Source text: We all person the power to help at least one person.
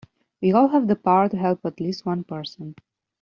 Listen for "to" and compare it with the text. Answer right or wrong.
right